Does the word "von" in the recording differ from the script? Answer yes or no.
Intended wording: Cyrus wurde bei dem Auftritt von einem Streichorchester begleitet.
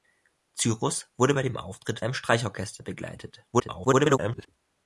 yes